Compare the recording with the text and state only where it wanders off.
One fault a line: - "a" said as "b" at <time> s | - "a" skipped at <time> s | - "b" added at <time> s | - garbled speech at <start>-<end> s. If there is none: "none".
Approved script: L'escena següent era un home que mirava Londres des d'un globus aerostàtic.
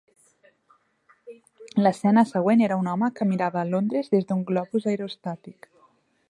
none